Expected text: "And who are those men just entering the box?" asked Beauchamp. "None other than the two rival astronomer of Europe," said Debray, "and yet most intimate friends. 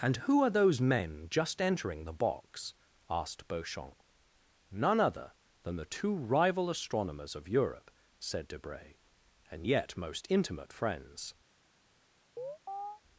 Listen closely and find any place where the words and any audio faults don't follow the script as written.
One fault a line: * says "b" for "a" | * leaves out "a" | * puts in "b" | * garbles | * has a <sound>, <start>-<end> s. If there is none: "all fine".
* says "astronomers" for "astronomer"
* has a chirp, 12.4-13.0 s